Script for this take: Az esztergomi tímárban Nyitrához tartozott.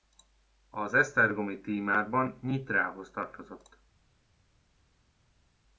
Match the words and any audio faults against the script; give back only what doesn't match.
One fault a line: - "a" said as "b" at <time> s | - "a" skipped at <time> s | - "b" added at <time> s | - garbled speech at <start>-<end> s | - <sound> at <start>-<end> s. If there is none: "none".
none